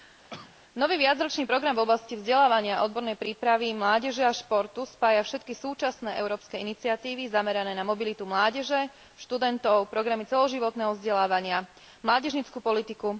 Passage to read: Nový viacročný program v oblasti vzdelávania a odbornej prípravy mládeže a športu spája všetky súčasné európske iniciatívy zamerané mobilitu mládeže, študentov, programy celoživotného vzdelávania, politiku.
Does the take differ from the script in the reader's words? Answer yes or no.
yes